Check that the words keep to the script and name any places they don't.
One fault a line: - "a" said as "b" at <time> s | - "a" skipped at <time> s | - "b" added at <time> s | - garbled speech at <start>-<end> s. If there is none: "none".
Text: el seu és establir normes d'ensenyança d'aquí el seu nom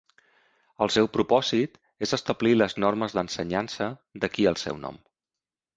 - "propòsit" added at 1.2 s
- "les" added at 2.6 s